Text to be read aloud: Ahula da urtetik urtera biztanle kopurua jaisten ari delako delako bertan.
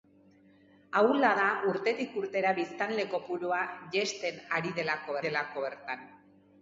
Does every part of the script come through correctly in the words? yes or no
yes